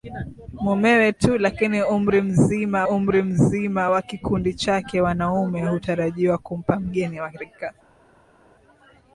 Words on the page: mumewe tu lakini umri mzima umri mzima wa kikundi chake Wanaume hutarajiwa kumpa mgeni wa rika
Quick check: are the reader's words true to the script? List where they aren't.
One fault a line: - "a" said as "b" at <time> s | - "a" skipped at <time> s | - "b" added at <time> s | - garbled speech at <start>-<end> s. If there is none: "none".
none